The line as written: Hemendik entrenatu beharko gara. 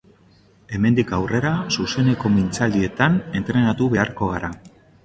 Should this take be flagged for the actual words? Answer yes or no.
yes